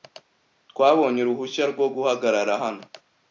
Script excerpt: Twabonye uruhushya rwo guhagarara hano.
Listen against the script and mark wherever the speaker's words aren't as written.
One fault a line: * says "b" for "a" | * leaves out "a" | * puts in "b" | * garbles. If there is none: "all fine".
all fine